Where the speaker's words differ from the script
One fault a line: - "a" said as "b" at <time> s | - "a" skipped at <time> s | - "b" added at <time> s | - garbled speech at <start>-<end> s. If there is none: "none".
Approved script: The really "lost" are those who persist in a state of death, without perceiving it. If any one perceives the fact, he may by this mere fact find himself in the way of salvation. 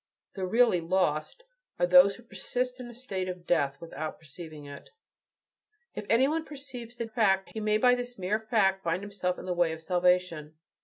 none